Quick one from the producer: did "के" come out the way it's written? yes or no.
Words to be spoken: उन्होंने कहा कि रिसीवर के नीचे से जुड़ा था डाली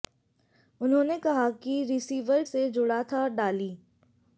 no